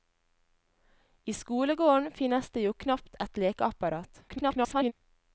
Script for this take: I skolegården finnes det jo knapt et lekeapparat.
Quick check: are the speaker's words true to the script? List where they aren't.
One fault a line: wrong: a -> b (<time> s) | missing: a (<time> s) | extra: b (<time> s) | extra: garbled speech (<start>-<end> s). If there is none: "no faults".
extra: garbled speech (4.3-4.9 s)